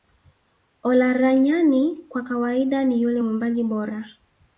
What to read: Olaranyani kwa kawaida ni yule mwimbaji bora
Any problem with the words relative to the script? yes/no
no